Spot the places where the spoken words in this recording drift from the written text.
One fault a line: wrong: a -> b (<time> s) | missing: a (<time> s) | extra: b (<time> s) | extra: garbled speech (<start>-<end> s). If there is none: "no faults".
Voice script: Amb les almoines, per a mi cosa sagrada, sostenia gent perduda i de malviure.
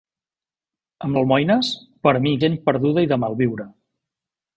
missing: les (1.2 s)
missing: cosa sagrada sostenia (2.3 s)